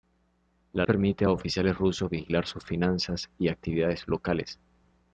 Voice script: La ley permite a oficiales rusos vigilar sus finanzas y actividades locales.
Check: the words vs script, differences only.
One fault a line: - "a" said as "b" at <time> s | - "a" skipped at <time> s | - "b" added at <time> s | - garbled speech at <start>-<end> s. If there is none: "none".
- "ley" skipped at 0.9 s